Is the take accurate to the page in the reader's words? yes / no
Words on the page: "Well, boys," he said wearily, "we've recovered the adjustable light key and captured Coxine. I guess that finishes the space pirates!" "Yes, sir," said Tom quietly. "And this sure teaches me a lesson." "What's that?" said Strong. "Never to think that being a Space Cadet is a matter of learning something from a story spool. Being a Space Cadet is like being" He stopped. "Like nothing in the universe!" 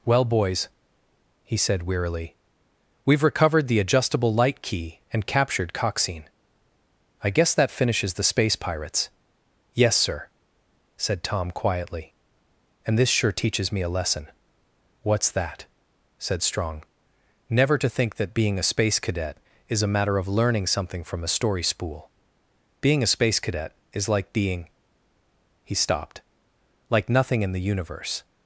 yes